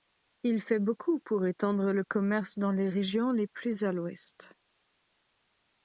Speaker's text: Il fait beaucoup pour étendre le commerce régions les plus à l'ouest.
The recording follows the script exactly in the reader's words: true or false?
false